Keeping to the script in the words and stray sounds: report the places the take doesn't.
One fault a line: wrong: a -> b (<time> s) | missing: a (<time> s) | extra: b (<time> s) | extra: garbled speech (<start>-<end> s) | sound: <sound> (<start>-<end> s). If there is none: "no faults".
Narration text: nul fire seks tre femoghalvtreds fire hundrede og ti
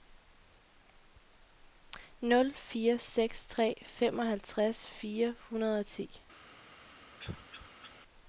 sound: cough (7.2-8.0 s)